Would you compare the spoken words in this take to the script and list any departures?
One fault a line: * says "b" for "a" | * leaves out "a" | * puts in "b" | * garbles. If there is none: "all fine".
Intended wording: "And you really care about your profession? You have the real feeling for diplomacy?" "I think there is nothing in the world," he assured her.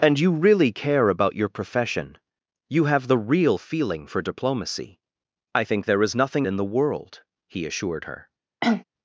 all fine